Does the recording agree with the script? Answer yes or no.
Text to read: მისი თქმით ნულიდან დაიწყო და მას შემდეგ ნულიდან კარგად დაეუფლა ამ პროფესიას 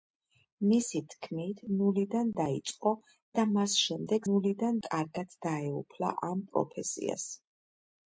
yes